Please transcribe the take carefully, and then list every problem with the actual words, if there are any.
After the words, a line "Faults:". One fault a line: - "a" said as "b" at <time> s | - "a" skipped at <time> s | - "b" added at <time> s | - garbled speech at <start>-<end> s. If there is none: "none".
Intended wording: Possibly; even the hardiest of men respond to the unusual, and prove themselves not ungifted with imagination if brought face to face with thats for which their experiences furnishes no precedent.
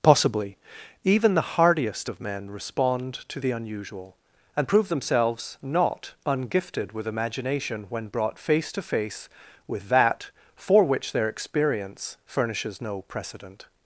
Possibly; even the hardiest of men respond to the unusual, and prove themselves not ungifted with imagination when brought face to face with that for which their experience furnishes no precedent.
Faults:
- "if" said as "when" at 7.9 s
- "thats" said as "that" at 9.9 s
- "experiences" said as "experience" at 11.3 s